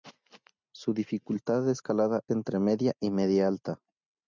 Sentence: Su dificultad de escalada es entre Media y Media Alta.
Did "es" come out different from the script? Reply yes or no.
yes